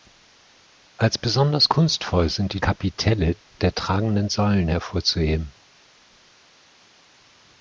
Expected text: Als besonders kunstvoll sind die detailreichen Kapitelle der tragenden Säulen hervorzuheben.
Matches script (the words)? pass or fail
fail